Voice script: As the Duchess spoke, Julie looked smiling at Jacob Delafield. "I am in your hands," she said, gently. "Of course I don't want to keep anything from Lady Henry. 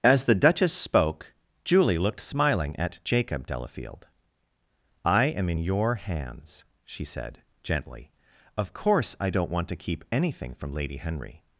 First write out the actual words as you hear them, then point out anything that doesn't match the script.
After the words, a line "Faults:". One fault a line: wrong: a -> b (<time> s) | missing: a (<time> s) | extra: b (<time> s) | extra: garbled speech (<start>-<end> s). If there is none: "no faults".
As the Duchess spoke, Julie looked smiling at Jacob Delafield. "I am in your hands," she said, gently. "Of course I don't want to keep anything from Lady Henry.
Faults:
no faults